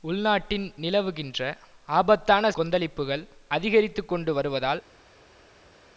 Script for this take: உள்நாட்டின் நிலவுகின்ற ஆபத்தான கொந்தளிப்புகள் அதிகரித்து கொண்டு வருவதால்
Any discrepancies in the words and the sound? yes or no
no